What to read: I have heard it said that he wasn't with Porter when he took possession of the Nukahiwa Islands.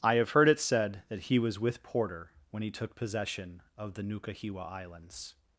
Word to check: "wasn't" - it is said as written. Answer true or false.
false